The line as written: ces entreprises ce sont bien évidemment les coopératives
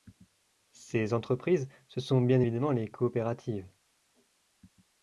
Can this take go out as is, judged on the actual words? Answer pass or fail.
pass